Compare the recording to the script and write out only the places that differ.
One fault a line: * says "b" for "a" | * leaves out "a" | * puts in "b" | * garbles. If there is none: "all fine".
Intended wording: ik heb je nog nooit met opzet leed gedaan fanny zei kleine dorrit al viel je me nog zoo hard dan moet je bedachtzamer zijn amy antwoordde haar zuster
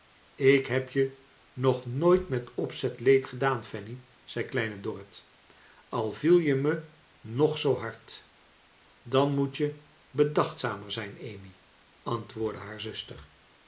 all fine